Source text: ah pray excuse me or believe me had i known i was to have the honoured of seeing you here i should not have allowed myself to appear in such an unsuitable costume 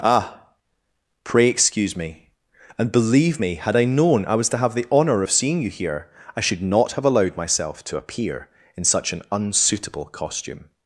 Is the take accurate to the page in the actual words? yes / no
no